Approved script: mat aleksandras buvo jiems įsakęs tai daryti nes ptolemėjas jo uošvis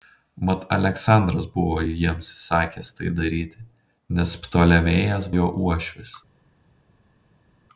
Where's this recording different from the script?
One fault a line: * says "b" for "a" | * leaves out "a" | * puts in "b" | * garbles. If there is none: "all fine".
all fine